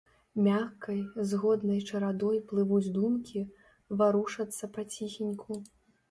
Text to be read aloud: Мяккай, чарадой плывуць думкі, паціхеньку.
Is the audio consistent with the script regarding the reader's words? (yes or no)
no